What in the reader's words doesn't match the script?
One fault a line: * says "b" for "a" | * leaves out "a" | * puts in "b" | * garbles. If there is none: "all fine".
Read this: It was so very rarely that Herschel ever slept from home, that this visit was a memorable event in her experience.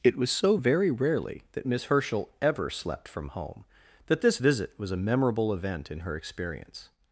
* puts in "Miss"